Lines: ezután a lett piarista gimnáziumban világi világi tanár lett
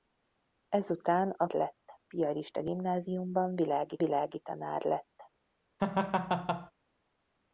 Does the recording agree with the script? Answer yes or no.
yes